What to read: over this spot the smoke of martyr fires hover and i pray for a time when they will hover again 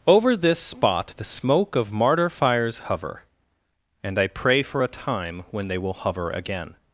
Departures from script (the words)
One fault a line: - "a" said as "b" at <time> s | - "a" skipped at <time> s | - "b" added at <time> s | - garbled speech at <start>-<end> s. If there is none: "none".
none